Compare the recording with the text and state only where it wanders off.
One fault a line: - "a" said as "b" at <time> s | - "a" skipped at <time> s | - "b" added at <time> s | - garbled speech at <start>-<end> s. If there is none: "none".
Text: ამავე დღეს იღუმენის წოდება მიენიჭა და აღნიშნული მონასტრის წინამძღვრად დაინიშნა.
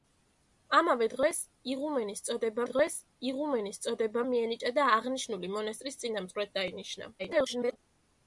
- "დღეს იღუმენის წოდება" added at 2.7 s
- garbled speech at 7.2-7.8 s